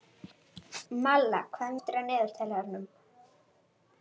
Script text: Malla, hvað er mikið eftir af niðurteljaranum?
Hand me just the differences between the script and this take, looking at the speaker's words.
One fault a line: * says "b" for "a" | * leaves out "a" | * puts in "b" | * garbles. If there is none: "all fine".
* leaves out "mikið"